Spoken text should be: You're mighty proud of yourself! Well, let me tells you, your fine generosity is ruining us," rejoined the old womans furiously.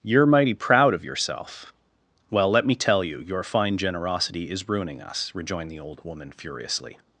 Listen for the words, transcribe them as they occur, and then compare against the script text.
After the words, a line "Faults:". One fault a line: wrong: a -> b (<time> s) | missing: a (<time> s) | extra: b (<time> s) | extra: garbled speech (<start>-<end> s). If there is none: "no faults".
You're mighty proud of yourself! Well, let me tell you, your fine generosity is ruining us," rejoined the old woman furiously.
Faults:
wrong: tells -> tell (2.7 s)
wrong: womans -> woman (6.0 s)